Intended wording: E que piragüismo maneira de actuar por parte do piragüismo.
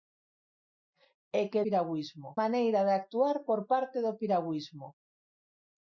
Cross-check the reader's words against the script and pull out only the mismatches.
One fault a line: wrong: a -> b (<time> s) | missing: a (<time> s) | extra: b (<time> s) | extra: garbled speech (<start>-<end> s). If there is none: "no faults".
no faults